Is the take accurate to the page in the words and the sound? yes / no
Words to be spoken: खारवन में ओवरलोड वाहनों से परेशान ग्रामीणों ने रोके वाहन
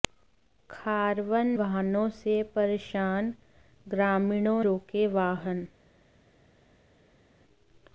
no